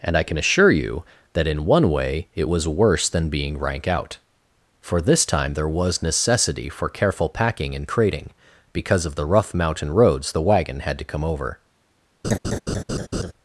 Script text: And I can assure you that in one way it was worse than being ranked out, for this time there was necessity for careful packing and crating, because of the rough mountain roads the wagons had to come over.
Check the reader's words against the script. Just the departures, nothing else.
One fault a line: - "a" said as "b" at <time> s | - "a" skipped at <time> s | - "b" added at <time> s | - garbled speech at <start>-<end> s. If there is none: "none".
- "ranked" said as "rank" at 3.6 s
- "wagons" said as "wagon" at 10.4 s